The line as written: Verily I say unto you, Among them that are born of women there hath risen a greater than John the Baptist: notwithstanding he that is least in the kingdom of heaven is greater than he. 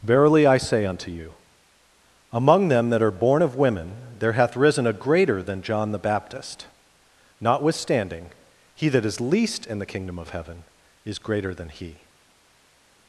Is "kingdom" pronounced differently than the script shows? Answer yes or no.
no